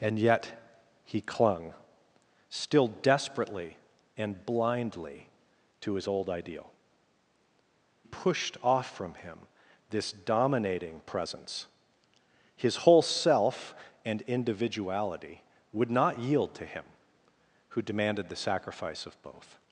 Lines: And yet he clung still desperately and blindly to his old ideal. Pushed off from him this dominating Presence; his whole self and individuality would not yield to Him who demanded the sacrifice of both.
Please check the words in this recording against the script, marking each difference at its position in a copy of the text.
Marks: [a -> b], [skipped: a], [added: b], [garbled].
And yet he clung still desperately and blindly to his old ideal. Pushed off from him this dominating Presence; his whole self and individuality would not yield to Him who demanded the sacrifice of both.